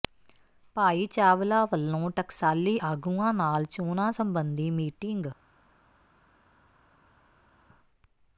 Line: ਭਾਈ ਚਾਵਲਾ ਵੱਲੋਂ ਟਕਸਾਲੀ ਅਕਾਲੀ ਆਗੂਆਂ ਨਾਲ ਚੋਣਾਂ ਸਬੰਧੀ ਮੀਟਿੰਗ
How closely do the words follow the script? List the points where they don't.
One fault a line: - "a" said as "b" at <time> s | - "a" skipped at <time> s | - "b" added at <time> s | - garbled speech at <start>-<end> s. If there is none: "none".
- "ਅਕਾਲੀ" skipped at 2.8 s